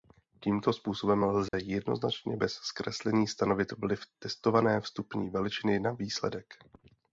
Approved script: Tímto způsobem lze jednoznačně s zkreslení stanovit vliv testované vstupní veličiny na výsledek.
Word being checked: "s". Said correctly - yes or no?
no